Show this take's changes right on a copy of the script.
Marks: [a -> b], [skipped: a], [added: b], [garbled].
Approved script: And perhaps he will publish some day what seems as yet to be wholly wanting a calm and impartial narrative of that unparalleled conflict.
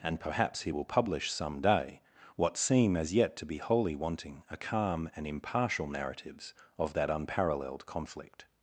And perhaps he will publish some day what [seems -> seem] as yet to be wholly wanting a calm and impartial [narrative -> narratives] of that unparalleled conflict.